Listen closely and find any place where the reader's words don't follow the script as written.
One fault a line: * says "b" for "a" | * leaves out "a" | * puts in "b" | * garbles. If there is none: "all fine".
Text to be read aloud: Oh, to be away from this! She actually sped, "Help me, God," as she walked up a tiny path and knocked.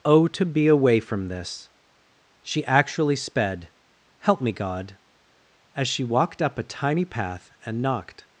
all fine